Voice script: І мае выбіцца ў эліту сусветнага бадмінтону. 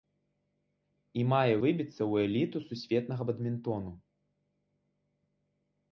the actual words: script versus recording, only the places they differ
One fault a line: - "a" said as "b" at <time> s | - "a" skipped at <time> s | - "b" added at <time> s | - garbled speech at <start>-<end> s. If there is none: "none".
none